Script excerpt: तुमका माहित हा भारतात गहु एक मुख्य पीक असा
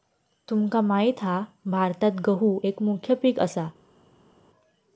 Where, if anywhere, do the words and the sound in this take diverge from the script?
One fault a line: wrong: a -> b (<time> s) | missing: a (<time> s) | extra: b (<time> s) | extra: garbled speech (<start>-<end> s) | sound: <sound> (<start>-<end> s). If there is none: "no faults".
no faults